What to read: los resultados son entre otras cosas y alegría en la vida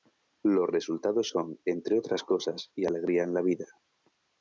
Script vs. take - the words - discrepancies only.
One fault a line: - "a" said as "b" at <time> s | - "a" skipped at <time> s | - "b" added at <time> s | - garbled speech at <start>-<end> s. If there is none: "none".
none